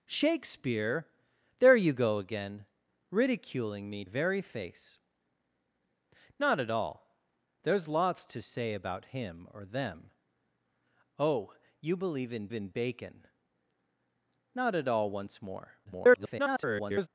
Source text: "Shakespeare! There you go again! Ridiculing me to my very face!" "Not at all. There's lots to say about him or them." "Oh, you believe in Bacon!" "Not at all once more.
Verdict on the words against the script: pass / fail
fail